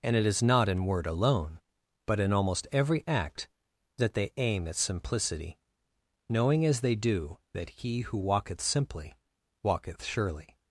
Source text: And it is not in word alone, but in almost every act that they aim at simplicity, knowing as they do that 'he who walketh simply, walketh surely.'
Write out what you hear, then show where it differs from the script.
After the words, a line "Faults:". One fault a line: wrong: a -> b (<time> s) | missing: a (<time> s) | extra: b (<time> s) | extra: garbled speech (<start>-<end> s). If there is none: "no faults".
And it is not in word alone, but in almost every act that they aim at simplicity, knowing as they do that 'he who walketh simply, walketh surely.'
Faults:
no faults